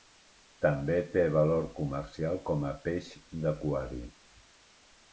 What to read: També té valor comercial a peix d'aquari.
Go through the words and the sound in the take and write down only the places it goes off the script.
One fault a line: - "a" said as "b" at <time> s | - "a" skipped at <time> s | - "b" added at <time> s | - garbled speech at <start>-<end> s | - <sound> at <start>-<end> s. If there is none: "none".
- "com" added at 2.5 s